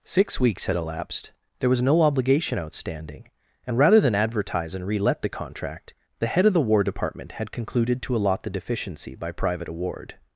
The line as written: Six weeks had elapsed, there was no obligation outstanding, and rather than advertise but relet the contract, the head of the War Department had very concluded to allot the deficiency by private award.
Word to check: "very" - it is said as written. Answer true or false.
false